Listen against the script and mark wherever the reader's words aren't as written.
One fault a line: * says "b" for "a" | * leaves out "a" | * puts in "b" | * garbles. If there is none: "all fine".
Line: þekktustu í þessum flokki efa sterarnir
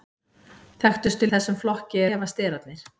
all fine